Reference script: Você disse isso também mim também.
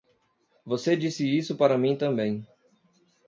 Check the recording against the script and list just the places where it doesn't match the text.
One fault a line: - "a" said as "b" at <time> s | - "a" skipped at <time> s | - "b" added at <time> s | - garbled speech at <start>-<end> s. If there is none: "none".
- "também" said as "para" at 1.6 s